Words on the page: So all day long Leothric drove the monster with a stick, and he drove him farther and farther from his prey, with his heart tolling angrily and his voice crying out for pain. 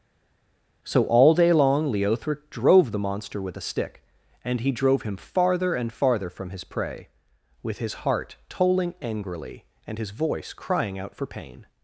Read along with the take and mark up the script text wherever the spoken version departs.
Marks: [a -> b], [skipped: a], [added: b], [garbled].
So all day long Leothric drove the monster with a stick, and he drove him farther and farther from his prey, with his heart tolling angrily and his voice crying out for pain.